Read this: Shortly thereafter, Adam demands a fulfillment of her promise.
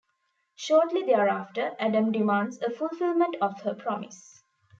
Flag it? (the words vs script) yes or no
no